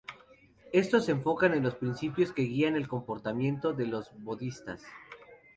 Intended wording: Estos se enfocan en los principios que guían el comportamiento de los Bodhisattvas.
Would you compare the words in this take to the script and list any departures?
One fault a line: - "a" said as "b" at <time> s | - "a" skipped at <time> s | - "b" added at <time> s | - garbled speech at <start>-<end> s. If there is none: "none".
none